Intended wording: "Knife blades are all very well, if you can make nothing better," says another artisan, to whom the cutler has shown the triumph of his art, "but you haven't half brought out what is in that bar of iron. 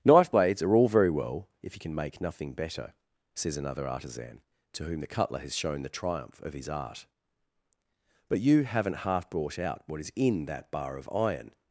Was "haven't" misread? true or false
false